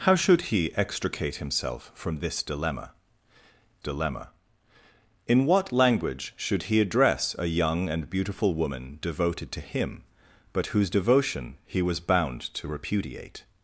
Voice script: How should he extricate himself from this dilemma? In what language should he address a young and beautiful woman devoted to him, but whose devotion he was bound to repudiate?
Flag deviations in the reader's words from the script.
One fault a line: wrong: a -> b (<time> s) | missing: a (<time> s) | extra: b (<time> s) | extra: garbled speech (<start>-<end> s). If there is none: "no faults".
extra: dilemma (3.8 s)